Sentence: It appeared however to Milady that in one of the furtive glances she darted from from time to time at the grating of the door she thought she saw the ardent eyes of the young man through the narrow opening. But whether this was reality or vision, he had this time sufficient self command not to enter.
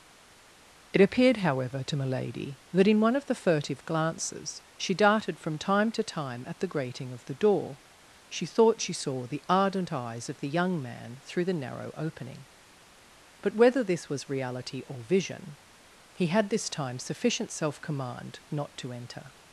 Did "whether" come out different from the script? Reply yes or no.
no